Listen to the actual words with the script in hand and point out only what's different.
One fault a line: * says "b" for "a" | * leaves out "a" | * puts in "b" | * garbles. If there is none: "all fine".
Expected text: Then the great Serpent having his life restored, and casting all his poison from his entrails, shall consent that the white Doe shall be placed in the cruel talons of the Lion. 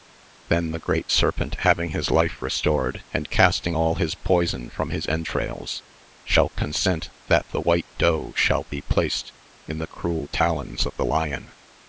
all fine